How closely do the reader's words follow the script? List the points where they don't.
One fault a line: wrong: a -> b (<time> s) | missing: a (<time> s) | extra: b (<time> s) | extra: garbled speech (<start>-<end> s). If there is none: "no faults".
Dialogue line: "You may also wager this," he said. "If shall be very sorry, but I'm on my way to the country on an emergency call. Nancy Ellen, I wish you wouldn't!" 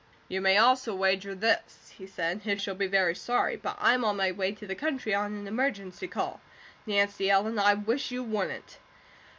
no faults